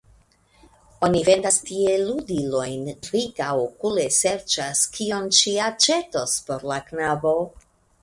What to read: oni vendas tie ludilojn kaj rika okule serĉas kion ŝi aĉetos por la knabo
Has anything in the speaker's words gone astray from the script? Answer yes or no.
yes